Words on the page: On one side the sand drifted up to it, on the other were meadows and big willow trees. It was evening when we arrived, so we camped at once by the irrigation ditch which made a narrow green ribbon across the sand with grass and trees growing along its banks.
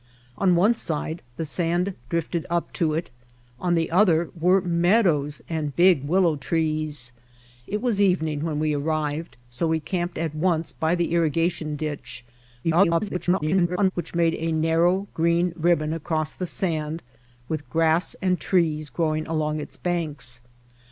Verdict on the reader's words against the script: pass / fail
fail